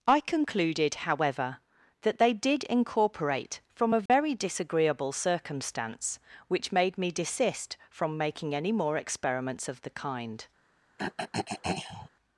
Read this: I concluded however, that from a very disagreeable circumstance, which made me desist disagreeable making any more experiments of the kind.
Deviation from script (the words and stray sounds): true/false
true